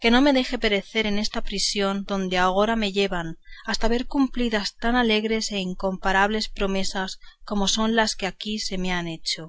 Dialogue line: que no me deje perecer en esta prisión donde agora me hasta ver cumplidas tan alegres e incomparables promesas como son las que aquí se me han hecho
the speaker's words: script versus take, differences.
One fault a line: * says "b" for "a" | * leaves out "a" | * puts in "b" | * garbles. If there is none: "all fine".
* puts in "llevan"